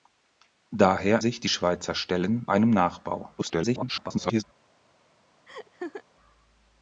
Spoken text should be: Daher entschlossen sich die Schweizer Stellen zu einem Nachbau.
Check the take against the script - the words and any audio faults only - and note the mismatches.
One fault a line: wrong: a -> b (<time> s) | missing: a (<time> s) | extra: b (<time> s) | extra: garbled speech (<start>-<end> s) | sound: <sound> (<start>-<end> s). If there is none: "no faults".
missing: entschlossen (1.2 s)
missing: zu (2.5 s)
extra: garbled speech (3.4-4.4 s)
sound: laugh (5.5-6.0 s)